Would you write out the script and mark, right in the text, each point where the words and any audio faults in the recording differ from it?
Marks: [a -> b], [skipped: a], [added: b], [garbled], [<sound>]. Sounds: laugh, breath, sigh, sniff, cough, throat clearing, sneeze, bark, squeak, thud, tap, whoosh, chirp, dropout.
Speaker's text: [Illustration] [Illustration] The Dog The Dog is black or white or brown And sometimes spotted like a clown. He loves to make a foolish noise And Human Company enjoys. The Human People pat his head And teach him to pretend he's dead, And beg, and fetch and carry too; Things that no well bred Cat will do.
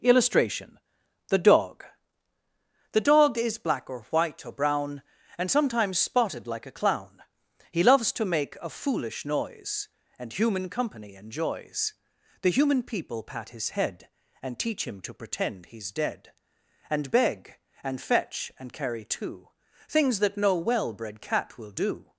[Illustration] [skipped: [Illustration]] The Dog The Dog is black or white or brown And sometimes spotted like a clown. He loves to make a foolish noise And Human Company enjoys. The Human People pat his head And teach him to pretend he's dead, And beg, and fetch and carry too; Things that no well bred Cat will do.